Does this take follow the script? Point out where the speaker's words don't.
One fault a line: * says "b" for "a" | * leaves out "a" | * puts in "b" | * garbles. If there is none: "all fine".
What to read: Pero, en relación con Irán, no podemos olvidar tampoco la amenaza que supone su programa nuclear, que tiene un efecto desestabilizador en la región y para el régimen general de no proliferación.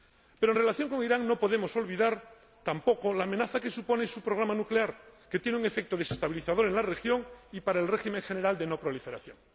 all fine